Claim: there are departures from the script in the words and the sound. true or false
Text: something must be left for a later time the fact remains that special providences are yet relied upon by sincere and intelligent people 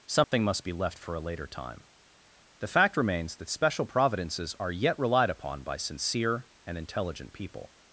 true